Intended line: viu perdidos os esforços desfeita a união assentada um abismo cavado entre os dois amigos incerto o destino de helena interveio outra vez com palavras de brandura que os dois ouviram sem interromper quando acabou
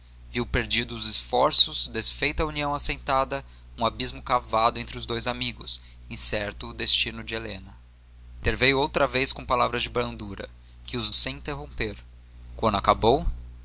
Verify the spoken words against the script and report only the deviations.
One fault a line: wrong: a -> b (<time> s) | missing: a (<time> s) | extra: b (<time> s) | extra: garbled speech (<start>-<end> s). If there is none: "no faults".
missing: dois ouviram (11.1 s)